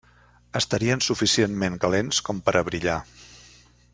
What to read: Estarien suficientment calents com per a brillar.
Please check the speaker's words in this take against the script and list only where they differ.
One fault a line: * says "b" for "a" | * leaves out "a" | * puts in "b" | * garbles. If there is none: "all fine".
all fine